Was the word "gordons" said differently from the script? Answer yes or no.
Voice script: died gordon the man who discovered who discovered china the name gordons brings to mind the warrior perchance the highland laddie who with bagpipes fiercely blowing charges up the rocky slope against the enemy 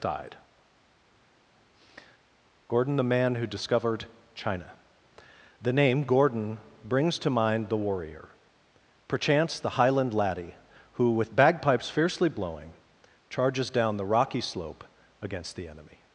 yes